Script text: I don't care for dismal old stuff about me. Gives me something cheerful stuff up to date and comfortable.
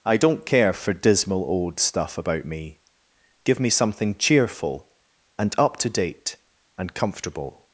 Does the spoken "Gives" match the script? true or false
false